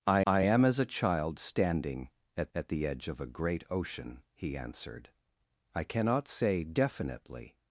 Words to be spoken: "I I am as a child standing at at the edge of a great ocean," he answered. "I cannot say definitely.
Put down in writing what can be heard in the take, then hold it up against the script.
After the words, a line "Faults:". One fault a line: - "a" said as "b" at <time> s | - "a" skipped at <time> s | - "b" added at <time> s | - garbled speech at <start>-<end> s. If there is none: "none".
"I I am as a child standing at at the edge of a great ocean," he answered. "I cannot say definitely.
Faults:
none